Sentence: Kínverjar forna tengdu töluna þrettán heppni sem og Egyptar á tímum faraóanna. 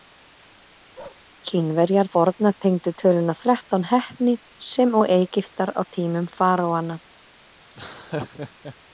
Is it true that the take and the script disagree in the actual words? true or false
false